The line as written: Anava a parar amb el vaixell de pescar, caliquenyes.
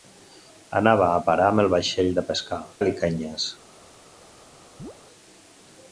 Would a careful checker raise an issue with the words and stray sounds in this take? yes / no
yes